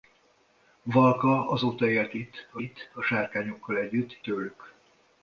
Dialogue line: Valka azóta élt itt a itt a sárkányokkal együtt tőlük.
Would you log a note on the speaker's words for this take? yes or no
no